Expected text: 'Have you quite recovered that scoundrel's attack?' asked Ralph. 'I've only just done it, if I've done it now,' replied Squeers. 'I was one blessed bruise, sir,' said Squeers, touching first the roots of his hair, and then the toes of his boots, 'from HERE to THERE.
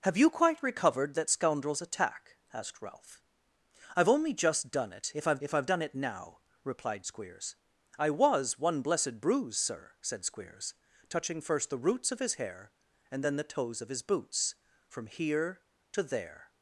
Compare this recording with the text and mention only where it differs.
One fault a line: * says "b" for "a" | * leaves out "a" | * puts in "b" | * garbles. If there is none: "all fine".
* puts in "if I've"